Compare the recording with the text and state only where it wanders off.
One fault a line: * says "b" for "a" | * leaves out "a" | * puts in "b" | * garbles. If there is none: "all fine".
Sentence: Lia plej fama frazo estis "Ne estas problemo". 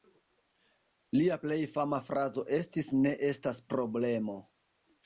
all fine